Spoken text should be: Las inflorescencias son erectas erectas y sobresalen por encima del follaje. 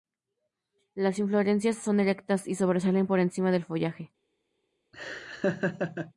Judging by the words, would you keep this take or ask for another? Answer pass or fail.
fail